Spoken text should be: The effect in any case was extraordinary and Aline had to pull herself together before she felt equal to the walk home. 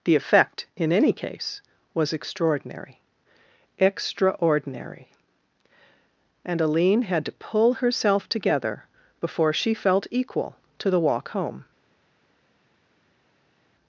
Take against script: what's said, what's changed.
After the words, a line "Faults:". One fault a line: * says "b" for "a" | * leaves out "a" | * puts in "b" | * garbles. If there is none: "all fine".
The effect in any case was extraordinary extraordinary and Aline had to pull herself together before she felt equal to the walk home.
Faults:
* puts in "extraordinary"